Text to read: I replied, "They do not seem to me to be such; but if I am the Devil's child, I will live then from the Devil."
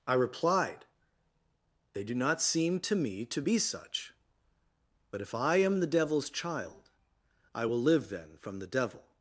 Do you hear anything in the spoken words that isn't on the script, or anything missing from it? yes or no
no